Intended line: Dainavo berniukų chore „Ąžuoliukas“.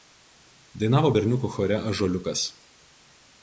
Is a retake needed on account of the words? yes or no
no